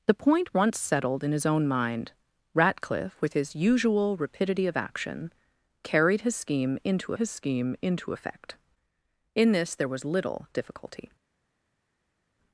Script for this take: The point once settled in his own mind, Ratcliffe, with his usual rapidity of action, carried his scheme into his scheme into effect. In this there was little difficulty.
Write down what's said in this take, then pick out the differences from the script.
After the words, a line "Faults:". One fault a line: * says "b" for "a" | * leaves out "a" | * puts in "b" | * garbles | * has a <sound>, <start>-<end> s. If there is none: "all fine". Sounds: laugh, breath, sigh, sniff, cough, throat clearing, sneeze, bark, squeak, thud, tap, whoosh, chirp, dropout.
The point once settled in his own mind, Ratcliffe, with his usual rapidity of action, carried his scheme into his scheme into effect. In this there was little difficulty.
Faults:
all fine